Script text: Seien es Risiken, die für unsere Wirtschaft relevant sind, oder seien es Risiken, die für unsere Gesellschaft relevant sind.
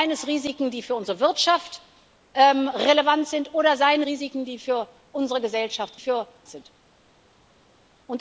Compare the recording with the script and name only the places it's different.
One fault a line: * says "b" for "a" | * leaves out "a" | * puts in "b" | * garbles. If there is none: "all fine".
* leaves out "es"
* says "für" for "relevant"